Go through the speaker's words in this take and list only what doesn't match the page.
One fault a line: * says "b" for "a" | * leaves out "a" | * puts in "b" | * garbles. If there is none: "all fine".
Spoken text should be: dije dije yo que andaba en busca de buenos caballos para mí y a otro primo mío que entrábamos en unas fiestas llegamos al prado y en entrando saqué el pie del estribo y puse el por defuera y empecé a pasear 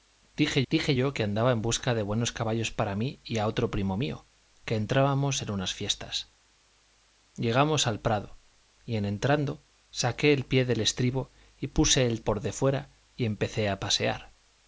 all fine